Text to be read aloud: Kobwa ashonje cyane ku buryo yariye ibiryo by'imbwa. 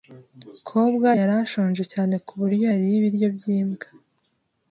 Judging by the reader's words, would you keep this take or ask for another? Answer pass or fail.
fail